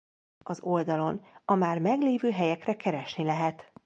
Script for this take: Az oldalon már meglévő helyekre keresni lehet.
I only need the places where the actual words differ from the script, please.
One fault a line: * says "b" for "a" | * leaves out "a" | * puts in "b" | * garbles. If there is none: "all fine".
* puts in "a"